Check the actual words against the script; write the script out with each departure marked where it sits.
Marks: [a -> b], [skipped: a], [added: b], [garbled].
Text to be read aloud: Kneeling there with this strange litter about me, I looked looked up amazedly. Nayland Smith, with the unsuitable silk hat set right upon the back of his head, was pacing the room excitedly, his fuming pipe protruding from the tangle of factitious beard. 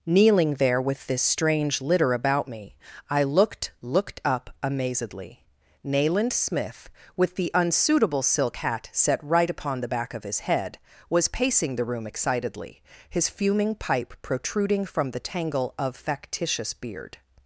Kneeling there with this strange litter about me, I looked looked up amazedly. Nayland Smith, with the unsuitable silk hat set right upon the back of his head, was pacing the room excitedly, his fuming pipe protruding from the tangle of factitious beard.